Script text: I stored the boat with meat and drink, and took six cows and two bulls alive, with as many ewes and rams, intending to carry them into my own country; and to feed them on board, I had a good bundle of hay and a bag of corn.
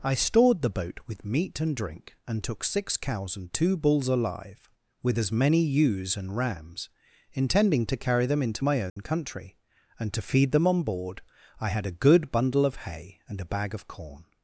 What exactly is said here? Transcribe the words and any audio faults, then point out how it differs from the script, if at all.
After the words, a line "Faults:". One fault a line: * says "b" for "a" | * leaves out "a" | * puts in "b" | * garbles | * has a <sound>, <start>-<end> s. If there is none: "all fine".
I stored the boat with meat and drink, and took six cows and two bulls alive, with as many ewes and rams, intending to carry them into my own country; and to feed them on board, I had a good bundle of hay and a bag of corn.
Faults:
* has a dropout, 8.9-9.0 s